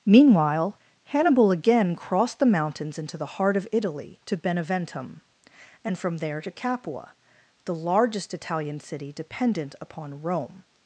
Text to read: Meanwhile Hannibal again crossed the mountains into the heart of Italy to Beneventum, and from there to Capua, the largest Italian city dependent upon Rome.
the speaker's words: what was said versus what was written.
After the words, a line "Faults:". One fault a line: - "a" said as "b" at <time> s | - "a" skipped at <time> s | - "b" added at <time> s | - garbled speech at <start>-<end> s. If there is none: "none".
Meanwhile Hannibal again crossed the mountains into the heart of Italy to Beneventum, and from there to Capua, the largest Italian city dependent upon Rome.
Faults:
none